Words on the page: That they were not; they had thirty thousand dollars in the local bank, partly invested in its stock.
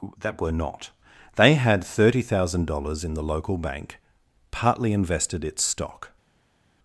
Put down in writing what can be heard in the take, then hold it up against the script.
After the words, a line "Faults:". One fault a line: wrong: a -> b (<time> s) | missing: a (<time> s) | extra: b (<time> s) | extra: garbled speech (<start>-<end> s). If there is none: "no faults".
That were not; they had thirty thousand dollars in the local bank, partly invested its stock.
Faults:
missing: they (0.4 s)
missing: in (5.4 s)